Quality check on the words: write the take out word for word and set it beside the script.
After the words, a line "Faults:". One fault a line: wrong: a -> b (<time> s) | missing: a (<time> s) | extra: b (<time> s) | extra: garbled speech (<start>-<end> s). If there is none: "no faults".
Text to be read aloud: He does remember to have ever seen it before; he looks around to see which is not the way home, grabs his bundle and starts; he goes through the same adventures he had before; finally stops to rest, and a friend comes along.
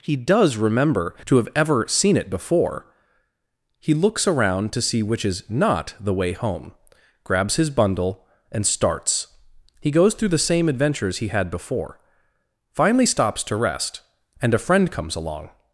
He does remember to have ever seen it before; he looks around to see which is not the way home, grabs his bundle and starts; he goes through the same adventures he had before; finally stops to rest, and a friend comes along.
Faults:
no faults